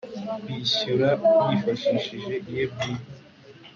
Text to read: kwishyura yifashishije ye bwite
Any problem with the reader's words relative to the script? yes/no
no